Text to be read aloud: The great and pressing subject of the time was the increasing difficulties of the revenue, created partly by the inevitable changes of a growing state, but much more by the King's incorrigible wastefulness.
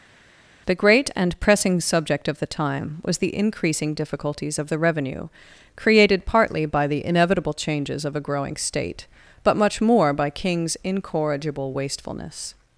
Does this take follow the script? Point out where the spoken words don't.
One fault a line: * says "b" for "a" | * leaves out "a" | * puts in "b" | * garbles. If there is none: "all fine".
* leaves out "the"